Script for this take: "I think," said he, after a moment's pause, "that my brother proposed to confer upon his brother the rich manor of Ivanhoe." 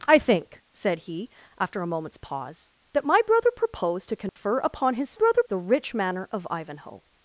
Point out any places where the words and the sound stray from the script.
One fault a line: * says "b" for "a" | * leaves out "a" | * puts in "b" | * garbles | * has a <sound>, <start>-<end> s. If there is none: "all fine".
* has a dropout, 4.3-4.4 s